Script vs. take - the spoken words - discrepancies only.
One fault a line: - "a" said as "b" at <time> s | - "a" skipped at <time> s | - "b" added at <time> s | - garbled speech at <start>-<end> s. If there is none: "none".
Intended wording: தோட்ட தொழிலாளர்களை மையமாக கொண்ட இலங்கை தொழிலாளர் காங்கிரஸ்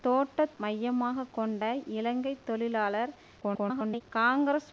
- "தொழிலாளர்களை" skipped at 0.5 s
- garbled speech at 3.4-4.0 s